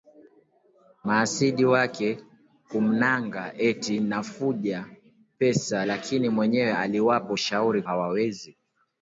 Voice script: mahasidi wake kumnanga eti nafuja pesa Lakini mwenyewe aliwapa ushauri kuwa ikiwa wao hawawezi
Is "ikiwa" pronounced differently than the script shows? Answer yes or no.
yes